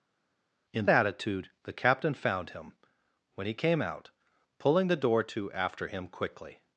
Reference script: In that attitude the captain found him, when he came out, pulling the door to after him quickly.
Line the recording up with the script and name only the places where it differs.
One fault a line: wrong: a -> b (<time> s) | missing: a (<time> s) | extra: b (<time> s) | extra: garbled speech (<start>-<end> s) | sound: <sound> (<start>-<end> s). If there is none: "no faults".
missing: that (0.9 s)